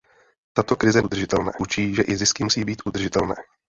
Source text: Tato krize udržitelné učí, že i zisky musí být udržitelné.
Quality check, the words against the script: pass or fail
pass